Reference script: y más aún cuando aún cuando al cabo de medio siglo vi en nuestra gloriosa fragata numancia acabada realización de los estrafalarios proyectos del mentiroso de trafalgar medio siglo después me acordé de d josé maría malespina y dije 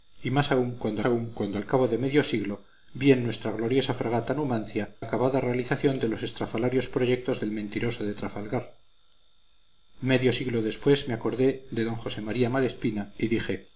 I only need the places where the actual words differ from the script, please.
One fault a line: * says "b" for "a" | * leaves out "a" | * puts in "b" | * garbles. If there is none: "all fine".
all fine